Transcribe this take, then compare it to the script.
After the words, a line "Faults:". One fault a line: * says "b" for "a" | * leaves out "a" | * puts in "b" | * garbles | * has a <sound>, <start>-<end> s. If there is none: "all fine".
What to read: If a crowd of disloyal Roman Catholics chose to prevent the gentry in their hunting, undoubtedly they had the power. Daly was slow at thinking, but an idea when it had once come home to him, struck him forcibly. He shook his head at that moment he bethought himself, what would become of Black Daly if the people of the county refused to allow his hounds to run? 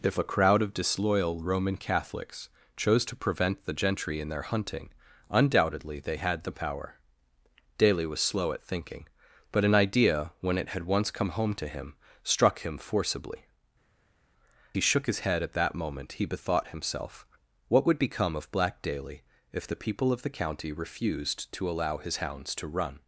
If a crowd of disloyal Roman Catholics chose to prevent the gentry in their hunting, undoubtedly they had the power. Daly was slow at thinking, but an idea when it had once come home to him, struck him forcibly. He shook his head at that moment he bethought himself, what would become of Black Daly if the people of the county refused to allow his hounds to run?
Faults:
all fine